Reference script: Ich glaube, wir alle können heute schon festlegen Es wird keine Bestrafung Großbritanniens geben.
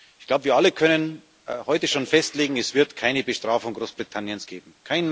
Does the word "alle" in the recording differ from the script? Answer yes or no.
no